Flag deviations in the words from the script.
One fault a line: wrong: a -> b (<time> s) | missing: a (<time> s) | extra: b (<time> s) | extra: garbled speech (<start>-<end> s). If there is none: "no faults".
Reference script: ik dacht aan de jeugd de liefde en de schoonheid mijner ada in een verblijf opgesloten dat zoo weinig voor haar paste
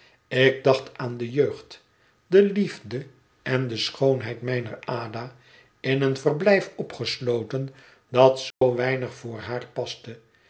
no faults